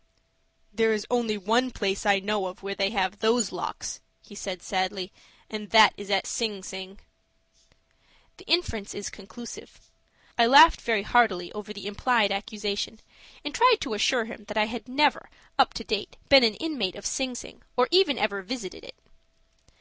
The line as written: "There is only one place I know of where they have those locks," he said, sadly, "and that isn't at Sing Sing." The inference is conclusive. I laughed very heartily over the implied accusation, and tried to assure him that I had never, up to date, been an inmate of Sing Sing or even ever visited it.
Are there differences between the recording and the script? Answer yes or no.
yes